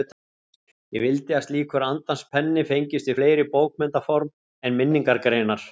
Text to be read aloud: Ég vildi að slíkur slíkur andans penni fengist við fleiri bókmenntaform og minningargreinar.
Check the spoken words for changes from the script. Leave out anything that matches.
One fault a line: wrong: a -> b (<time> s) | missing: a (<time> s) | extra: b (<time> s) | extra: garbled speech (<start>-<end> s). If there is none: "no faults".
missing: slíkur (1.9 s)
wrong: og -> en (4.6 s)